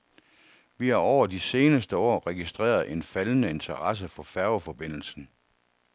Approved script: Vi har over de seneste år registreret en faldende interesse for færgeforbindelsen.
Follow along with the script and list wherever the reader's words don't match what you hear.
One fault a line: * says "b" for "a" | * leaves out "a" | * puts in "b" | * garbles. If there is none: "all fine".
all fine